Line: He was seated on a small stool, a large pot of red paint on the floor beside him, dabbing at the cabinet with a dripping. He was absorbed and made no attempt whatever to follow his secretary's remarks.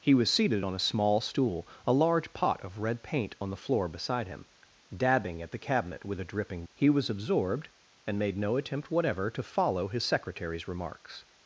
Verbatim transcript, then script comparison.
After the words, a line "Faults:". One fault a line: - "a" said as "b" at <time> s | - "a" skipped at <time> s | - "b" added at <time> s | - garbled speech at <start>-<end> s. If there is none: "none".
He was seated on a small stool, a large pot of red paint on the floor beside him, dabbing at the cabinet with a dripping. He was absorbed and made no attempt whatever to follow his secretary's remarks.
Faults:
none